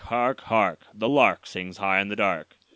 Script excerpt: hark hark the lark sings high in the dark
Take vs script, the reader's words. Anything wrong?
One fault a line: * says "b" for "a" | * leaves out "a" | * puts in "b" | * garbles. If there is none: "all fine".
all fine